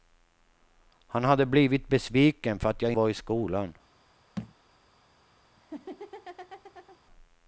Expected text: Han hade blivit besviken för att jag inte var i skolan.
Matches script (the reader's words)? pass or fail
fail